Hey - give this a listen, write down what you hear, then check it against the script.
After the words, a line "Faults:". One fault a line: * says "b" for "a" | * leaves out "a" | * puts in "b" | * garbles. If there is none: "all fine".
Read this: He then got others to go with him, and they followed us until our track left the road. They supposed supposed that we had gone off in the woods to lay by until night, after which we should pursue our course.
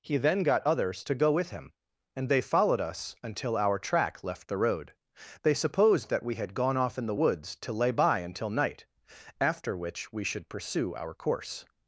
He then got others to go with him, and they followed us until our track left the road. They supposed that we had gone off in the woods to lay by until night, after which we should pursue our course.
Faults:
* leaves out "supposed"